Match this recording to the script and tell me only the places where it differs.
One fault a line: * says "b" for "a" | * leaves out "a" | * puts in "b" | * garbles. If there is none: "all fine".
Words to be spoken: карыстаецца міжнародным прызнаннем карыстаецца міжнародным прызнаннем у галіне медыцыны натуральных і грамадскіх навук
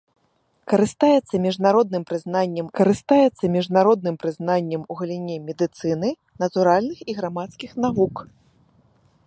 all fine